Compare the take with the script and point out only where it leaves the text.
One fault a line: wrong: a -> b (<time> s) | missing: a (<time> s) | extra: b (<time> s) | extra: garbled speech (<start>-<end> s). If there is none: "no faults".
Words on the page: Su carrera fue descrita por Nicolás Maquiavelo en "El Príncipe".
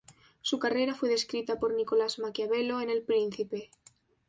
no faults